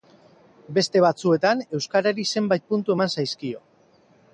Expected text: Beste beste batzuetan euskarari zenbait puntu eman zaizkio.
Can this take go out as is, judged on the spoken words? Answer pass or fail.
fail